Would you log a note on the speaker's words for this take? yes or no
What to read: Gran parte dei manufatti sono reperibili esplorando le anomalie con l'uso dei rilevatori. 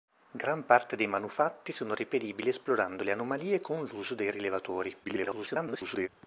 yes